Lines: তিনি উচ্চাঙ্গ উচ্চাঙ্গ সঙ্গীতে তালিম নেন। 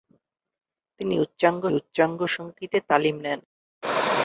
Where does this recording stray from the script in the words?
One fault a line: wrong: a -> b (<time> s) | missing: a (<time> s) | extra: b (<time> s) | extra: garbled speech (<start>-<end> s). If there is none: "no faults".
no faults